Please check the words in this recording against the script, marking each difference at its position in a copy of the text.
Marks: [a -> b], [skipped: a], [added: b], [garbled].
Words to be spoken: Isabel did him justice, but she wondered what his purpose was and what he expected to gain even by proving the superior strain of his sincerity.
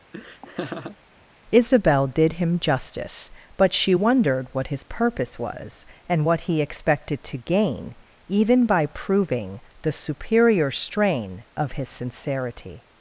Isabel did him justice, but she wondered what his purpose was and what he expected to gain even by proving the superior strain of his sincerity.